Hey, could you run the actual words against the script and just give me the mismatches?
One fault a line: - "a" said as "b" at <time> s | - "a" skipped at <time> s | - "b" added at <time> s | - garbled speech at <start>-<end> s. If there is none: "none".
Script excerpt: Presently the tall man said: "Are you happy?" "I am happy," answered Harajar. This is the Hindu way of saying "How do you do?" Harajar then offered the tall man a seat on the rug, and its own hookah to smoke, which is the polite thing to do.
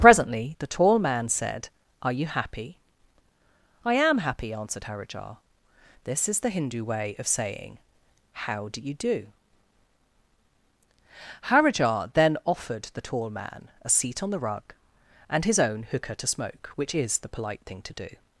- "its" said as "his" at 15.4 s